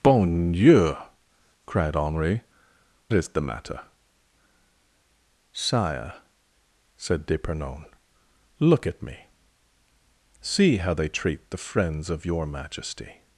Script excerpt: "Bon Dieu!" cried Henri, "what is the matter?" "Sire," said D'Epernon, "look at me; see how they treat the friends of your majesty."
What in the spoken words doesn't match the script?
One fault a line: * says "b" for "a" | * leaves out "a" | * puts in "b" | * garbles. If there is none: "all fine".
* leaves out "what"